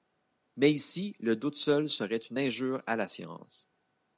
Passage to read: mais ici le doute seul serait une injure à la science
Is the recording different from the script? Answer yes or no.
no